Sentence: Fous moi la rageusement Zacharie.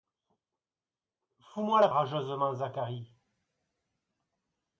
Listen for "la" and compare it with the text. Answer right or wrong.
right